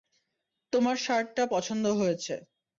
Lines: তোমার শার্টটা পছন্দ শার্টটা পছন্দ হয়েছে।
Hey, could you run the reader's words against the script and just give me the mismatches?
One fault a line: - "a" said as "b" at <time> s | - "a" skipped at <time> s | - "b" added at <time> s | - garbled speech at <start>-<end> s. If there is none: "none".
- "শার্টটা পছন্দ" skipped at 1.8 s